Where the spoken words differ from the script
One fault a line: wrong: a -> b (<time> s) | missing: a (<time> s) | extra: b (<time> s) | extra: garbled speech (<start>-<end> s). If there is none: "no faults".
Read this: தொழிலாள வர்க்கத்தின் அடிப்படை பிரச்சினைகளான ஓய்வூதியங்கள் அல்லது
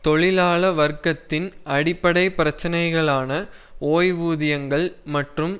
wrong: அல்லது -> மற்றும் (5.1 s)